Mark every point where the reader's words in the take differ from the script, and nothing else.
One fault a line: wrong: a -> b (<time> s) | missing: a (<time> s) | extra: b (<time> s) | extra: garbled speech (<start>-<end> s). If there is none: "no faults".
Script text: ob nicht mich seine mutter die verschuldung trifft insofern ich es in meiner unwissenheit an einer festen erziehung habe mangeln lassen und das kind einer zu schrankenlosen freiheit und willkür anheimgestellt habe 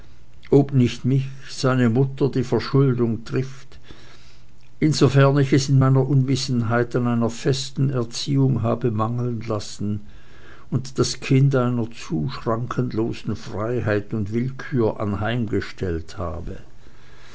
no faults